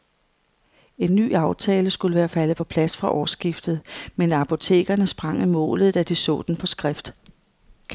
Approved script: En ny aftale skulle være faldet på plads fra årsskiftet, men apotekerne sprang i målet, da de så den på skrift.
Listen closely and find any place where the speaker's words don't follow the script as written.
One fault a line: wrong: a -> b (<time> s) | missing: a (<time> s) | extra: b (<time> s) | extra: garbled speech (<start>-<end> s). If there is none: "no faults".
no faults